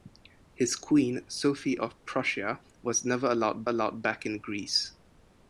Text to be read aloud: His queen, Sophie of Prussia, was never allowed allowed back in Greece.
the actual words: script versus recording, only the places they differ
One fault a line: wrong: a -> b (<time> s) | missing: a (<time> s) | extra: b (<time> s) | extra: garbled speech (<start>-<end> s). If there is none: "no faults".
no faults